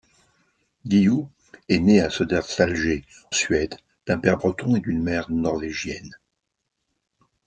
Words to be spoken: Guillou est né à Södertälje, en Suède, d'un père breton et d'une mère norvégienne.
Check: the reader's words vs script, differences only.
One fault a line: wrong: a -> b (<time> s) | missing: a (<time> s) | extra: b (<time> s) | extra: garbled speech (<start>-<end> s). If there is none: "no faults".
missing: en (3.0 s)